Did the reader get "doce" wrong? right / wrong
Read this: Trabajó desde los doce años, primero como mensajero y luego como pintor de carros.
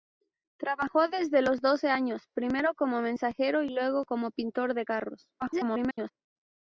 right